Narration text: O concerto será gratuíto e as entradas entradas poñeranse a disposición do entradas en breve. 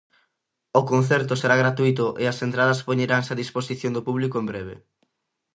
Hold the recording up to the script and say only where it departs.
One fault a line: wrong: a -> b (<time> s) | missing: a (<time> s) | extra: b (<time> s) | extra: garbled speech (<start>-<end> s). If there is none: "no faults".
missing: entradas (2.8 s)
wrong: entradas -> público (4.1 s)